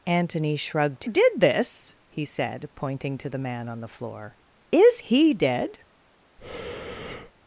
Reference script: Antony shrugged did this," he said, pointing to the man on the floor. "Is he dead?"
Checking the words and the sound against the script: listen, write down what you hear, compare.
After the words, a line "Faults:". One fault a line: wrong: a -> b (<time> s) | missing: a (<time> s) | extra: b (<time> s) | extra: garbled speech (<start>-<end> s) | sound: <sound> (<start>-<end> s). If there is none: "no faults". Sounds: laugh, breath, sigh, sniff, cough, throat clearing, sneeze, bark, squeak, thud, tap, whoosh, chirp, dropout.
Antony shrugged did this," he said, pointing to the man on the floor. "Is he dead?"
Faults:
sound: breath (6.4-7.3 s)